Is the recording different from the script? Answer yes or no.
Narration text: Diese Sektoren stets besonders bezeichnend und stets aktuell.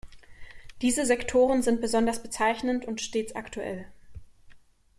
yes